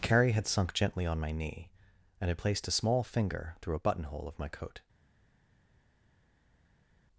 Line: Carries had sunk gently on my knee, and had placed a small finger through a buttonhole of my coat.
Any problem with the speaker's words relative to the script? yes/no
yes